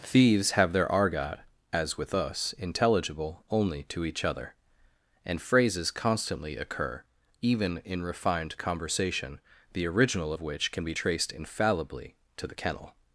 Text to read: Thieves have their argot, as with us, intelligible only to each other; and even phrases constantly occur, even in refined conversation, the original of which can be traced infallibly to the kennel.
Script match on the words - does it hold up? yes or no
no